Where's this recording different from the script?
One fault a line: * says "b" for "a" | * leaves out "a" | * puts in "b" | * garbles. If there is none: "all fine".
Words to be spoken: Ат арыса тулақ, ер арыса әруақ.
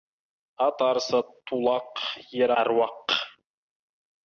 * leaves out "арыса"